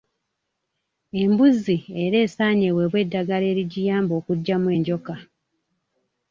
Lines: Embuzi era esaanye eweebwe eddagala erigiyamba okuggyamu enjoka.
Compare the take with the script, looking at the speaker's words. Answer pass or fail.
pass